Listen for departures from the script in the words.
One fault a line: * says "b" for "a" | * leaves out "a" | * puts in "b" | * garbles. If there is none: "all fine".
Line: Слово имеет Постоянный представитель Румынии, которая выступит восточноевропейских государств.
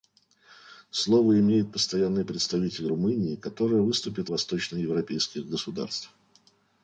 all fine